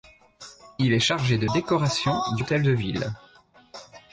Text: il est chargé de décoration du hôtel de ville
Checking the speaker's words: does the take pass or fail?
pass